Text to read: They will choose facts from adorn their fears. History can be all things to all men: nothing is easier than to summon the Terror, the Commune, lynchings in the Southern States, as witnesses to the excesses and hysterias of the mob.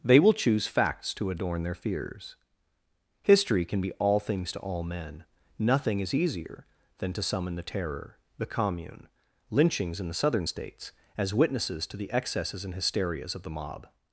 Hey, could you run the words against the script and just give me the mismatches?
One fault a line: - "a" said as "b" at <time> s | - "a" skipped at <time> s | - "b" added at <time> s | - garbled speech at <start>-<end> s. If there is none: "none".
- "from" said as "to" at 1.1 s